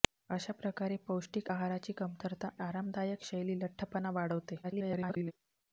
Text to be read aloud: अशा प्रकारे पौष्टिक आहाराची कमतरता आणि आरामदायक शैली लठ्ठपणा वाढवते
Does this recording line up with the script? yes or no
no